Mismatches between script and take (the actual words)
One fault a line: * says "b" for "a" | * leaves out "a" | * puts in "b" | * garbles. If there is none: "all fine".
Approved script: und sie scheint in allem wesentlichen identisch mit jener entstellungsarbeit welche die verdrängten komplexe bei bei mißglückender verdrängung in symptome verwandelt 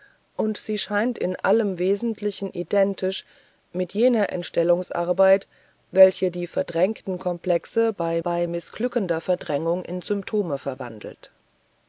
all fine